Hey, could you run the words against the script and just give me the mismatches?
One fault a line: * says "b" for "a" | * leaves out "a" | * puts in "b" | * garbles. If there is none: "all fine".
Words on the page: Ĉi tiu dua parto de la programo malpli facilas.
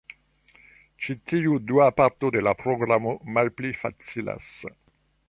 all fine